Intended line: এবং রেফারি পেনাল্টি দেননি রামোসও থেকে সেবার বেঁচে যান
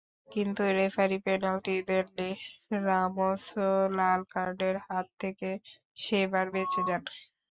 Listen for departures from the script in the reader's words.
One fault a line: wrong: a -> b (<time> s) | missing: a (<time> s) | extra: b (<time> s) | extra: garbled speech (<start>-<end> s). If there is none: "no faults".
wrong: এবং -> কিন্তু (0.3 s)
extra: লাল কার্ডের হাত (4.0 s)